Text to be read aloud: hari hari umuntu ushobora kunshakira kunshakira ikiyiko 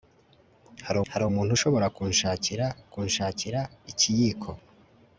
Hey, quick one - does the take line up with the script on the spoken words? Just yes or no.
yes